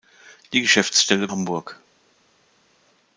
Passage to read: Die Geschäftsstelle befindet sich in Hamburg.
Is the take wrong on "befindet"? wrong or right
wrong